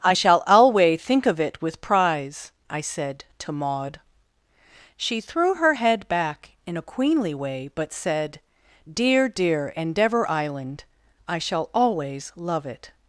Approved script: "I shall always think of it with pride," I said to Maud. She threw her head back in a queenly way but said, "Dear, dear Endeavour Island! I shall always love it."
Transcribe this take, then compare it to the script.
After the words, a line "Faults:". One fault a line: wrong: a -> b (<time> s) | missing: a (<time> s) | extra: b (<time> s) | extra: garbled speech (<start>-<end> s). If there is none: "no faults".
"I shall alway think of it with prize," I said to Maud. She threw her head back in a queenly way but said, "Dear, dear Endeavour Island! I shall always love it."
Faults:
wrong: always -> alway (0.5 s)
wrong: pride -> prize (1.8 s)